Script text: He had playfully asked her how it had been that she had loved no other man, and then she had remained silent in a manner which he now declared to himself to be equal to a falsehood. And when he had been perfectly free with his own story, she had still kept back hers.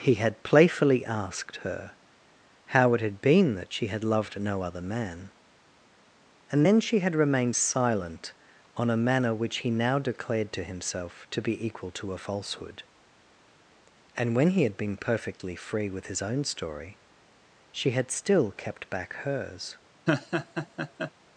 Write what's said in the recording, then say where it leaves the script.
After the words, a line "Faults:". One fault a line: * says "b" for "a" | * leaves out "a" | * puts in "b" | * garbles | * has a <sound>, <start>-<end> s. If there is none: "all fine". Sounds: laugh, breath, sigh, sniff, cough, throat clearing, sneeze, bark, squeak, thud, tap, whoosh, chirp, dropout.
He had playfully asked her how it had been that she had loved no other man, and then she had remained silent on a manner which he now declared to himself to be equal to a falsehood. And when he had been perfectly free with his own story, she had still kept back hers.
Faults:
* says "on" for "in"
* has a laugh, 20.1-21.1 s